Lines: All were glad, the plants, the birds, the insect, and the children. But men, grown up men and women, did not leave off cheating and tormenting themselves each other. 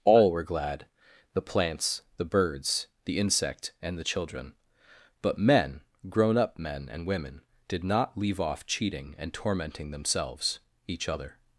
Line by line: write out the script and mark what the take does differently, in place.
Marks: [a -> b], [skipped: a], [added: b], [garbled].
All were glad, the plants, the birds, the insect, and the children. But men, grown up men and women, did not leave off cheating and tormenting themselves each other.